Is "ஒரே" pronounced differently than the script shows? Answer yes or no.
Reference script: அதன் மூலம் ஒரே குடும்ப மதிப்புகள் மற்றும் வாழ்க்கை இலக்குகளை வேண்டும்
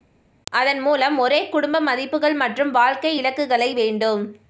no